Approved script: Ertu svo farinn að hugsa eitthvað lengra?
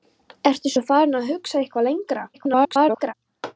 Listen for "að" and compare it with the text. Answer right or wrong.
right